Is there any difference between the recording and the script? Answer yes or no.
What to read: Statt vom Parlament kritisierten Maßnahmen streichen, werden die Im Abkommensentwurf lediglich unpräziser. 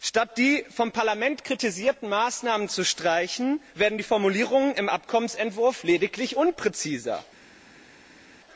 yes